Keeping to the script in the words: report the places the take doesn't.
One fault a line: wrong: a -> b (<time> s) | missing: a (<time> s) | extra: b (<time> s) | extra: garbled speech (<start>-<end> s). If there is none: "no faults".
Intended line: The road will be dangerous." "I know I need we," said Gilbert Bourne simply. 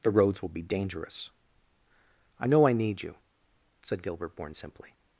wrong: road -> roads (0.1 s)
wrong: we -> you (3.0 s)